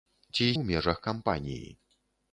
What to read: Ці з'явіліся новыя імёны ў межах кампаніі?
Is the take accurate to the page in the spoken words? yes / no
no